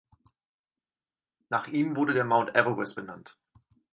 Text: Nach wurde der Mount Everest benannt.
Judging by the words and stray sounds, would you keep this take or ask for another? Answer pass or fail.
fail